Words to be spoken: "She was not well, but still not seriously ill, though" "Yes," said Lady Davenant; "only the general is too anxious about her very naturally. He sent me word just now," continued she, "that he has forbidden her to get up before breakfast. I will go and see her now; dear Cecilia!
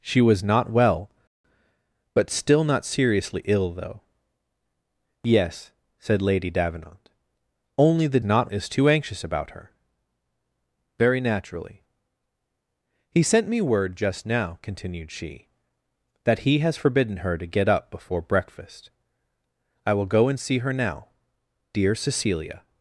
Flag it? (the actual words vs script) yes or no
yes